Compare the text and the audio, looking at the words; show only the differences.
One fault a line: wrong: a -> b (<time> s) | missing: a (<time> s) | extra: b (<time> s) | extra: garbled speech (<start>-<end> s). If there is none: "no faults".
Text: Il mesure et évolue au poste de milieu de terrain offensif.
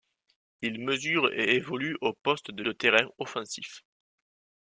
missing: milieu (2.6 s)